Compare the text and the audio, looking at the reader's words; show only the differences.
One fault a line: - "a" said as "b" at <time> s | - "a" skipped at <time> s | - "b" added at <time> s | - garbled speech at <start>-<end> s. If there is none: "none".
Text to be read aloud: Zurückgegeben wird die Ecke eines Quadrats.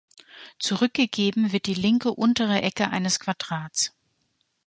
- "linke untere" added at 1.8 s